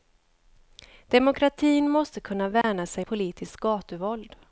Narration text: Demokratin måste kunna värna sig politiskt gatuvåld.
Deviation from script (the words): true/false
false